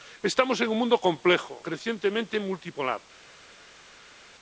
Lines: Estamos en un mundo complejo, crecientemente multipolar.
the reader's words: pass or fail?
pass